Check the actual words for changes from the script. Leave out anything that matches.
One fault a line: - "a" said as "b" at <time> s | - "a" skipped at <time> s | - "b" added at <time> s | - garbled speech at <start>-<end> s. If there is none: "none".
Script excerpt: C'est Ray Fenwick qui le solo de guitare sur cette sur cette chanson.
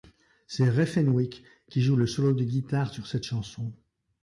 - "joue" added at 1.8 s
- "sur cette" skipped at 3.2 s